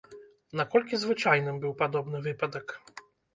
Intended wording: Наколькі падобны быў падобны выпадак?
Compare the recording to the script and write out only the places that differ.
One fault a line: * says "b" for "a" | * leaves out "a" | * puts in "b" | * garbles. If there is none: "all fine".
* says "звычайным" for "падобны"